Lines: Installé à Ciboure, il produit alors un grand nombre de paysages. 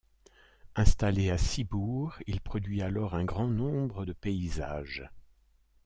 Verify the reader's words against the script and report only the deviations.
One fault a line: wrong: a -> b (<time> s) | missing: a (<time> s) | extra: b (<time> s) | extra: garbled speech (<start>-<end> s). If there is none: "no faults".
no faults